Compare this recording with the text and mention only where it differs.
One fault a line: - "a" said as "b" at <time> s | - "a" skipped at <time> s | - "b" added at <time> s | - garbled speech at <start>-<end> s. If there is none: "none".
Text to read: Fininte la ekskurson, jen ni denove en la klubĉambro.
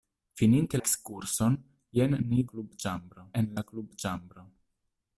- "la" skipped at 0.8 s
- "denove" said as "klubĉambro" at 2.5 s